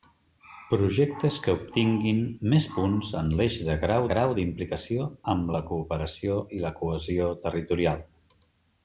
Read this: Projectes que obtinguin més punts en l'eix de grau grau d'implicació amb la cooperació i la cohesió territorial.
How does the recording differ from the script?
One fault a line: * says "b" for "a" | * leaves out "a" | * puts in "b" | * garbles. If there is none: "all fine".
all fine